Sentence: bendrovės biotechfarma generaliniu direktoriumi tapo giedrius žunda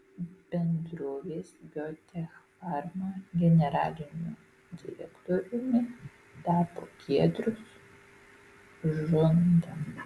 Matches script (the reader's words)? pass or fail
pass